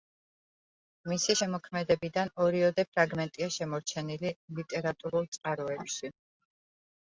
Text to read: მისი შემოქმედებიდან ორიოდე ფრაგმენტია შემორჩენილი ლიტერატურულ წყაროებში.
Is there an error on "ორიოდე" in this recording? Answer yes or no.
no